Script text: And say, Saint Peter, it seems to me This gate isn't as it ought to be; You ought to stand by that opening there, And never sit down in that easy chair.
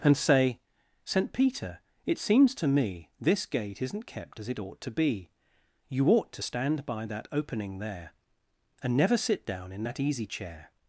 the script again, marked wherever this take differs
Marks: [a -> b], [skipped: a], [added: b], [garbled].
And say, Saint Peter, it seems to me This gate isn't [added: kept] as it ought to be; You ought to stand by that opening there, And never sit down in that easy chair.